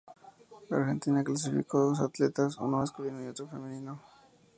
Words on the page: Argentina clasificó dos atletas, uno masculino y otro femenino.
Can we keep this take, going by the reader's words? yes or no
yes